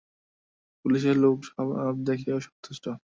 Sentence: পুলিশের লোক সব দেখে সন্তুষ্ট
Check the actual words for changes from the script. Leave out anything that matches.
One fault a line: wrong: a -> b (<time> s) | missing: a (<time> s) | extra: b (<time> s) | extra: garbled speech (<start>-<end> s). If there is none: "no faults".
no faults